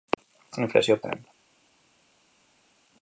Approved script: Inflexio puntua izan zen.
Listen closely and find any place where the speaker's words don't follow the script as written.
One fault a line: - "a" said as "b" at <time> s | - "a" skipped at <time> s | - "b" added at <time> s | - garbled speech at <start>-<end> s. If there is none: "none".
- "puntua izan" skipped at 1.0 s